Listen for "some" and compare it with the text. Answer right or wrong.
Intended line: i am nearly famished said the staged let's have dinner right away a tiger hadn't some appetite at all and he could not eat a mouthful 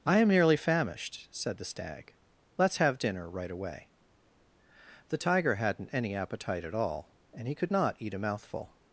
wrong